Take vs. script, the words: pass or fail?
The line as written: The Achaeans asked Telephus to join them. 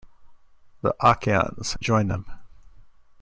fail